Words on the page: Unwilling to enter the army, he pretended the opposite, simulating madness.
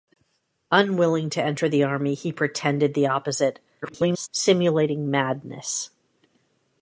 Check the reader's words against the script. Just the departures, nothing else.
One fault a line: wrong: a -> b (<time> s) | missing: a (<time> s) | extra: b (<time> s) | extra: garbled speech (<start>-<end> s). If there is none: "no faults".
extra: garbled speech (3.8-4.3 s)